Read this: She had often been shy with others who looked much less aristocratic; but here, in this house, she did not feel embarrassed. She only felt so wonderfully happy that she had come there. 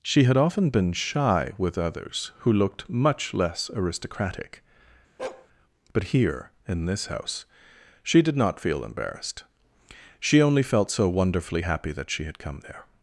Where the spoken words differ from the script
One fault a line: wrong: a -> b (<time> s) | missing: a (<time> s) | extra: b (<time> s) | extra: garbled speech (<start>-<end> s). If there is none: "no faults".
no faults